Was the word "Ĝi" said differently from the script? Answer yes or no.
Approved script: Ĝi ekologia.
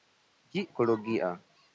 no